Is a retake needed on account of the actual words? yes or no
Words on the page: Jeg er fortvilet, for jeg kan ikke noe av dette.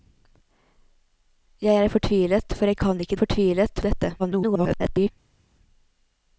yes